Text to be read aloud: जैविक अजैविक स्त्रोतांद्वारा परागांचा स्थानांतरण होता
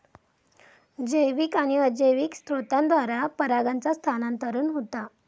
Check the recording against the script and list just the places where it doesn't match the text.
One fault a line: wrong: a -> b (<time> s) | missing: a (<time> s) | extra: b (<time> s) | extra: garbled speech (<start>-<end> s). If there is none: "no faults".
extra: आणि (1.6 s)